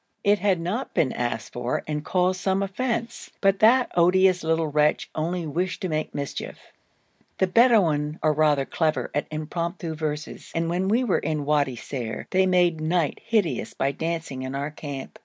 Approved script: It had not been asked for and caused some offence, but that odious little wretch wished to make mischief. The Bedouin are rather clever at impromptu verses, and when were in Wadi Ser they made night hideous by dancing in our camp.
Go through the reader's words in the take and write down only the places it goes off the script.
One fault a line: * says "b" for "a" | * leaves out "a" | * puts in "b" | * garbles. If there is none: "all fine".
* puts in "only"
* puts in "we"